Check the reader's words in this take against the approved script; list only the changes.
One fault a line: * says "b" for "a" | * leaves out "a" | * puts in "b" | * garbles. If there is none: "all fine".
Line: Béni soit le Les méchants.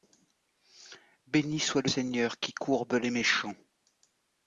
* puts in "Seigneur qui courbe"